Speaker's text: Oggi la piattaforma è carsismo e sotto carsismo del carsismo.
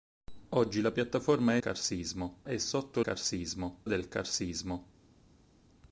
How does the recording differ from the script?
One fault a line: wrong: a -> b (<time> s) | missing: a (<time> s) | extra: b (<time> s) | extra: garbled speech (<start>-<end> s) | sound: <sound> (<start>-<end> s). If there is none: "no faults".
no faults